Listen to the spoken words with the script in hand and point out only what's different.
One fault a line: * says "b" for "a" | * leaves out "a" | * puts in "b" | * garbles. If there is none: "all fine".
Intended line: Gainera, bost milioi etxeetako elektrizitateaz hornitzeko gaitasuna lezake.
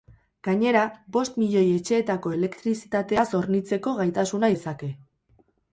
all fine